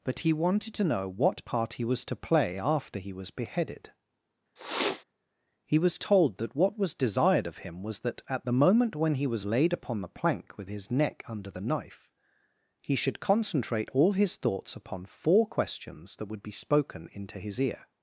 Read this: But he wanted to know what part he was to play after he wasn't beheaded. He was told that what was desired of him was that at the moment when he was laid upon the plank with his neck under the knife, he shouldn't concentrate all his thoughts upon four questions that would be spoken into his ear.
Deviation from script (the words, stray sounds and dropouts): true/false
true